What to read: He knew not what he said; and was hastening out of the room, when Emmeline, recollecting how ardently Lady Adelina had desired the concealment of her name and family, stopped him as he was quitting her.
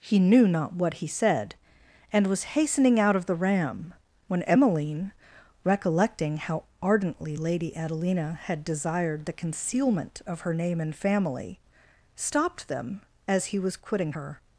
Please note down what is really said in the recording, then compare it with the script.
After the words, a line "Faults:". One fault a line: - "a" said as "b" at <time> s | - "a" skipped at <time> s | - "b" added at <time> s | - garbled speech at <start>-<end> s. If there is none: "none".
He knew not what he said; and was hastening out of the ram, when Emmeline, recollecting how ardently Lady Adelina had desired the concealment of her name and family, stopped them as he was quitting her.
Faults:
- "room" said as "ram" at 3.4 s
- "him" said as "them" at 12.7 s